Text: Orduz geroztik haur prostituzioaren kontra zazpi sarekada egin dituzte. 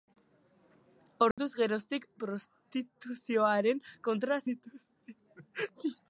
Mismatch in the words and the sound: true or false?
true